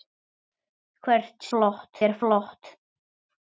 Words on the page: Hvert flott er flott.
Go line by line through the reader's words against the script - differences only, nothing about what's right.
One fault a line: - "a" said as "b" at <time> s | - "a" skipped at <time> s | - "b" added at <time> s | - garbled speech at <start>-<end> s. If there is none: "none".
none